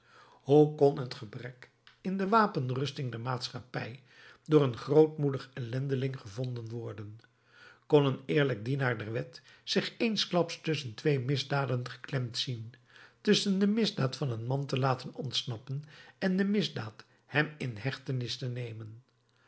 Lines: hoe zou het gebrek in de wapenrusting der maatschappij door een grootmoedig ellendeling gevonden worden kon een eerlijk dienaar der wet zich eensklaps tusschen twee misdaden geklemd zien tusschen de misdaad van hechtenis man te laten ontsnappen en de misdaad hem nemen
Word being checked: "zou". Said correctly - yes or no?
no